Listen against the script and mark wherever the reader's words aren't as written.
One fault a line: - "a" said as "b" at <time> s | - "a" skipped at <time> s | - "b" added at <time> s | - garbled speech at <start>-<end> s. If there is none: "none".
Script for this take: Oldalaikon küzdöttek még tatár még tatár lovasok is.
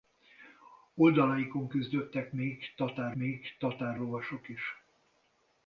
none